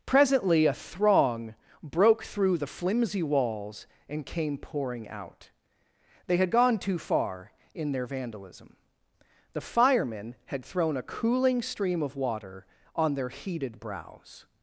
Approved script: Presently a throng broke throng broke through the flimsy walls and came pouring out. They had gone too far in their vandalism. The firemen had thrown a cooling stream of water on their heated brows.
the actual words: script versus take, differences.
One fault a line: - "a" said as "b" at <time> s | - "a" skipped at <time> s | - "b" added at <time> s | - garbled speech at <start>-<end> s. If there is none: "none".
- "throng broke" skipped at 2.2 s